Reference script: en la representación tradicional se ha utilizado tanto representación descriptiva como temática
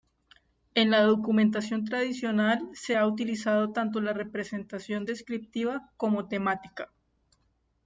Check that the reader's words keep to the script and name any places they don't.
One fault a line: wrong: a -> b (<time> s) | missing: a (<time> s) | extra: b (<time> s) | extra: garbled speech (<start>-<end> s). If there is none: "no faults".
wrong: representación -> documentación (1.0 s)
extra: la (4.0 s)